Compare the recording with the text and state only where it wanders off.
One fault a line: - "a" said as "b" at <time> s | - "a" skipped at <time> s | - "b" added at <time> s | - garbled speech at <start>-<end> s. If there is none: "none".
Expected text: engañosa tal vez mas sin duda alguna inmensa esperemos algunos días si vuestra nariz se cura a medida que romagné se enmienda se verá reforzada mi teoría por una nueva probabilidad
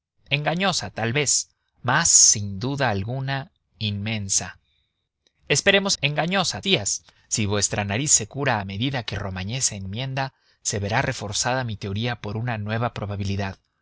- "algunos" said as "engañosa" at 6.0 s